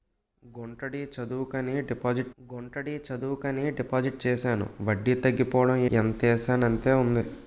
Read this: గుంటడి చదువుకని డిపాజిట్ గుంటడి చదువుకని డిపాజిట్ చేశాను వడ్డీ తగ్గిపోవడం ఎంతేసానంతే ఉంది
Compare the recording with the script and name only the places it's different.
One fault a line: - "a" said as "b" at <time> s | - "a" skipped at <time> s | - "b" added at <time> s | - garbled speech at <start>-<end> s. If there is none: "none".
none